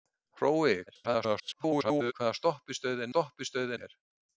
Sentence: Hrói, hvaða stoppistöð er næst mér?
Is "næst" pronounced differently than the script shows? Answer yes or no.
yes